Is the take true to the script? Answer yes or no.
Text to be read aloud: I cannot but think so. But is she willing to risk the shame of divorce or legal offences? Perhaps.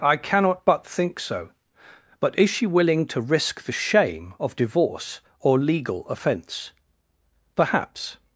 no